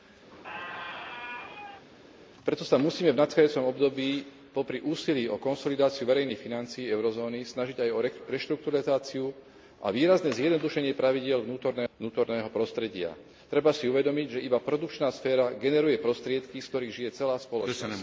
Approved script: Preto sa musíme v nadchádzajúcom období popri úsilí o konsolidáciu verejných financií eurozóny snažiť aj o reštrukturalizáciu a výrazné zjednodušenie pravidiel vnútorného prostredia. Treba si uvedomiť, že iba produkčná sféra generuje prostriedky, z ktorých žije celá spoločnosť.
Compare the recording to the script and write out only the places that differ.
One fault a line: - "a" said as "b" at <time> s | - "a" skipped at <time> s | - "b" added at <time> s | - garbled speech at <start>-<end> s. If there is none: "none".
none